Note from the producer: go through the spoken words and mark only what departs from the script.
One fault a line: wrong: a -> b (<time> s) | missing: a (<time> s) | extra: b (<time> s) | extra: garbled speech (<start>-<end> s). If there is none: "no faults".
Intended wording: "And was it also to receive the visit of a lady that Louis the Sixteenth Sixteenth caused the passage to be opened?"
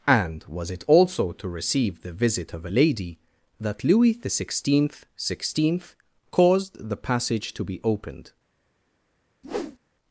no faults